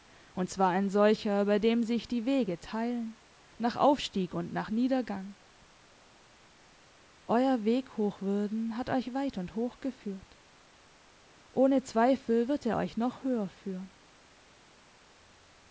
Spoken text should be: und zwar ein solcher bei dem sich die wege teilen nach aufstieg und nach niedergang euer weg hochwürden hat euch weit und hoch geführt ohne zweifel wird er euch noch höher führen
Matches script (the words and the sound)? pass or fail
pass